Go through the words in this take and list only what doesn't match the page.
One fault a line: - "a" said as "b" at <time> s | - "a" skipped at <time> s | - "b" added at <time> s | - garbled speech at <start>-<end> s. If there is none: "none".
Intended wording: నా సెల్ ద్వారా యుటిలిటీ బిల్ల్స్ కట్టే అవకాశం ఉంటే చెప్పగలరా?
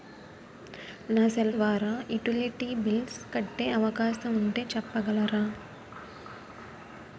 none